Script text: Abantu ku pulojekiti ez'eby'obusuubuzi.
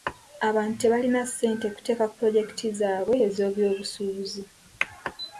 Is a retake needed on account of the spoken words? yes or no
yes